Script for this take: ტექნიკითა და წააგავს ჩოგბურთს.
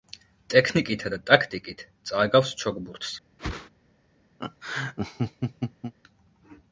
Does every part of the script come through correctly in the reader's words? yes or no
no